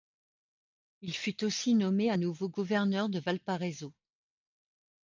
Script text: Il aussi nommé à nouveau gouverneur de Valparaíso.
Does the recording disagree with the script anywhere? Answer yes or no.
yes